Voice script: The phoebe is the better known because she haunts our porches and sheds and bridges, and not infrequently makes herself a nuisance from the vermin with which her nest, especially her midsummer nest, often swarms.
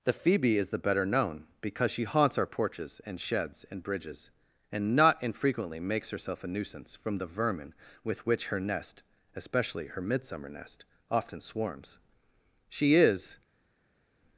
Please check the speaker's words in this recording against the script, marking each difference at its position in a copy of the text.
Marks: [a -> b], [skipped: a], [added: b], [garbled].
The phoebe is the better known because she haunts our porches and sheds and bridges, and not infrequently makes herself a nuisance from the vermin with which her nest, especially her midsummer nest, often swarms. [added: She is]